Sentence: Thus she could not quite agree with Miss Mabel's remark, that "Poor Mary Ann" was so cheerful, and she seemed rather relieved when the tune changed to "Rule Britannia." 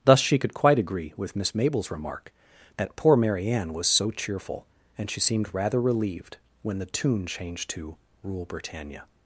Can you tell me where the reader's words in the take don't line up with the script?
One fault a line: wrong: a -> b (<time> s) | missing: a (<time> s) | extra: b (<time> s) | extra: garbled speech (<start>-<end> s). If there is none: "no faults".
missing: not (0.5 s)